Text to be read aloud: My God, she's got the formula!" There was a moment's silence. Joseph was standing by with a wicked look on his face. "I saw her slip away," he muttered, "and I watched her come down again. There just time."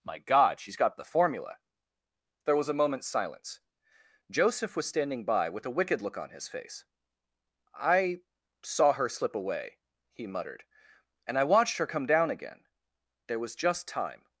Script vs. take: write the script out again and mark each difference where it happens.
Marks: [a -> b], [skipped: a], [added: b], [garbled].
My God, she's got the formula!" There was a moment's silence. Joseph was standing by with a wicked look on his face. "I saw her slip away," he muttered, "and I watched her come down again. There [added: was] just time."